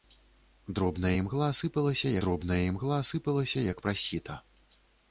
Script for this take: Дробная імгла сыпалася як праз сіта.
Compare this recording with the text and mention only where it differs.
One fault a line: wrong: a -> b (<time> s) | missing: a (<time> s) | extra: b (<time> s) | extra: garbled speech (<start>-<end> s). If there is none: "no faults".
extra: дробная імгла сыпалася (2.2 s)